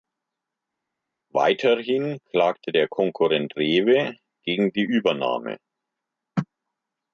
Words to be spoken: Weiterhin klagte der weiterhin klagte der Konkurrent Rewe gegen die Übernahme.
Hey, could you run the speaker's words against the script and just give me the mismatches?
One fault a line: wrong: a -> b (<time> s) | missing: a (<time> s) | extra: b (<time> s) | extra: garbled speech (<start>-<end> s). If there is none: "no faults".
missing: weiterhin klagte der (2.9 s)